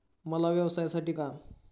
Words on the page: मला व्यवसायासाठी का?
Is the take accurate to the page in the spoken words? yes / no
yes